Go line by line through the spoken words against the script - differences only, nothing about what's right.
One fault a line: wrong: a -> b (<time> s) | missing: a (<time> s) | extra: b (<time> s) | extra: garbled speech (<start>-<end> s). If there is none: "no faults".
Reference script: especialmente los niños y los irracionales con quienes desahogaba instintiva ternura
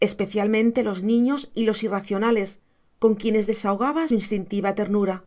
no faults